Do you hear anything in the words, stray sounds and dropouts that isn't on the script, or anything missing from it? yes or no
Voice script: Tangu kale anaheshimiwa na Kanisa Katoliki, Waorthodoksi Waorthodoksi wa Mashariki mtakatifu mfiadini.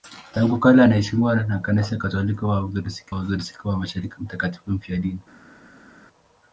no